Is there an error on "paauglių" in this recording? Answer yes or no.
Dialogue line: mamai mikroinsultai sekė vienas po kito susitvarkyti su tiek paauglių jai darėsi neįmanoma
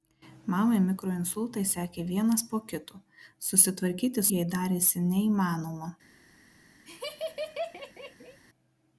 yes